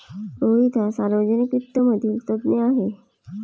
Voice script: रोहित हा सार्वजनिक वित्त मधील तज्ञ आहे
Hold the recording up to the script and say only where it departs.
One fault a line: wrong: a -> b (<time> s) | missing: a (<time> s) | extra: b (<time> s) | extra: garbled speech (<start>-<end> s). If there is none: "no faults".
no faults